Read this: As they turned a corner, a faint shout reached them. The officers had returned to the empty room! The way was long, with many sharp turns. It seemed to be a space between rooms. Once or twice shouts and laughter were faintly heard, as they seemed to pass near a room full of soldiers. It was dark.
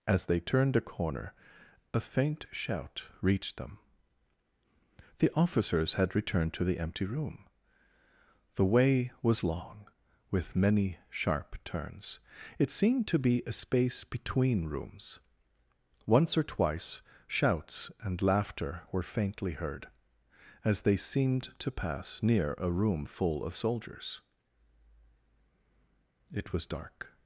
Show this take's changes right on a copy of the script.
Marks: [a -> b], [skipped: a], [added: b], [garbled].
As they turned a corner, a faint shout reached them. The officers had returned to the empty room! The way was long, with many sharp turns. It seemed to be a space between rooms. Once or twice shouts and laughter were faintly heard, as they seemed to pass near a room full of soldiers. It was dark.